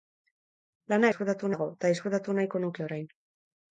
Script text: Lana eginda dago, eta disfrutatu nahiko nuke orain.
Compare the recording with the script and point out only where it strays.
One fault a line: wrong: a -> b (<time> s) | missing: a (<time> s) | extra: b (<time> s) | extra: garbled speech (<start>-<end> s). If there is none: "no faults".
wrong: eginda -> disfrutatu (1.1 s)